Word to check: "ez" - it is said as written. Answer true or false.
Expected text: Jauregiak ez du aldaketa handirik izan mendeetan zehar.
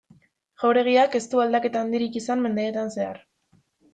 true